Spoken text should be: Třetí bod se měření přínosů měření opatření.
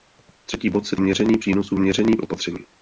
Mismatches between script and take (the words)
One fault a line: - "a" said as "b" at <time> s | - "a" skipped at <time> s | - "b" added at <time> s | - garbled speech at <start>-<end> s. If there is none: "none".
none